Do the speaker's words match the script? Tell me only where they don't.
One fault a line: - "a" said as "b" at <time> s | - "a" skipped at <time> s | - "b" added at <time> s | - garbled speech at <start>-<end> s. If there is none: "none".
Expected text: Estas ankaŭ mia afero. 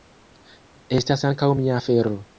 none